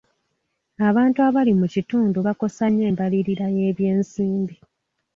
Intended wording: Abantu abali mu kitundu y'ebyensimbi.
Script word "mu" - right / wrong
right